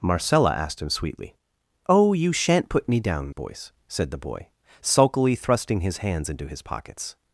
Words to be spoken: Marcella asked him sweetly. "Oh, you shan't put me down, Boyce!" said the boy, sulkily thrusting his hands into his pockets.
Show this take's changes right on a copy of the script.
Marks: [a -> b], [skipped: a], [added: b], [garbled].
Marcella asked him sweetly. "Oh, you shan't put me down, Boyce!" said the boy, sulkily thrusting his hands into his pockets.